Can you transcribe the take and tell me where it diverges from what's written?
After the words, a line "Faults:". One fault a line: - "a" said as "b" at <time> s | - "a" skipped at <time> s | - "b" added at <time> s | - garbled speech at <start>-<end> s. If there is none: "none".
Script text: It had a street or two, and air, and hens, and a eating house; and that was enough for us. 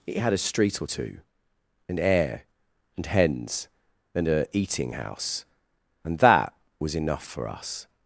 It had a street or two, and air, and hens, and a eating house; and that was enough for us.
Faults:
none